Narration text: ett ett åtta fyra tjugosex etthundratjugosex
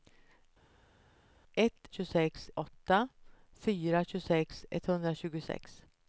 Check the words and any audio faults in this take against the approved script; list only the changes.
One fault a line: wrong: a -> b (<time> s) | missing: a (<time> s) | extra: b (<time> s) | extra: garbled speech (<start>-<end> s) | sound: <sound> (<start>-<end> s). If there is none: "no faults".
wrong: ett -> tjugosex (1.9 s)